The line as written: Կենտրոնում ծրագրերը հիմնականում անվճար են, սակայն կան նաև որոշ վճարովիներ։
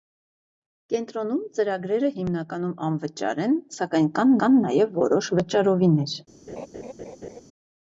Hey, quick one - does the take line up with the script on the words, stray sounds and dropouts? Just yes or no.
no